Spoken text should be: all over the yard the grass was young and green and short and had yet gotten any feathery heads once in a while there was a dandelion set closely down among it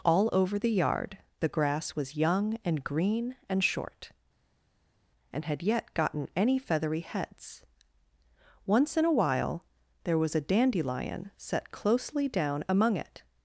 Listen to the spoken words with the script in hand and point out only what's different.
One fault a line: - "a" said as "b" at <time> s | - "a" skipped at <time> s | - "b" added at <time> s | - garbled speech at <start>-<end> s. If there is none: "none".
none